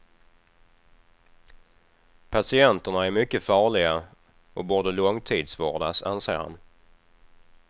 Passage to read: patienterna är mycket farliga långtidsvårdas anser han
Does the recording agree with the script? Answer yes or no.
no